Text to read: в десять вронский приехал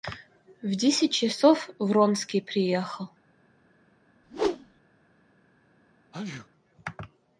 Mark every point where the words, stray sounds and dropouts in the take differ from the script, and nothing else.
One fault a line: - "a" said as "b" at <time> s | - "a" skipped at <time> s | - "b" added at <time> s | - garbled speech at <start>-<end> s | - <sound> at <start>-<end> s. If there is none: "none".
- "часов" added at 1.1 s
- whoosh at 4.2-4.8 s
- sneeze at 6.1-6.5 s